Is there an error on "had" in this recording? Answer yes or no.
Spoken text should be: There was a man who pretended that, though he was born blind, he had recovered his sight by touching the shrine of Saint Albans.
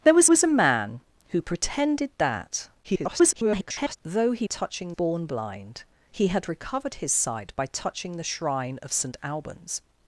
no